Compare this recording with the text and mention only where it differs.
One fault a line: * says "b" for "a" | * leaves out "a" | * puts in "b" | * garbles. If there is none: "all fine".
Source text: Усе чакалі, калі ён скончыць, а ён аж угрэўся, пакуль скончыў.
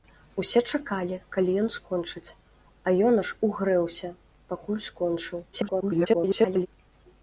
* garbles